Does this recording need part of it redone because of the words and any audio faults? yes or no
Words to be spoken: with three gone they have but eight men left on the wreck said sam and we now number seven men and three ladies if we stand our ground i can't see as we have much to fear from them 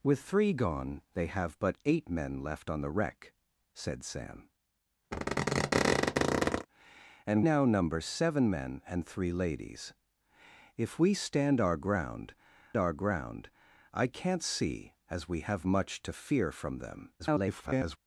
yes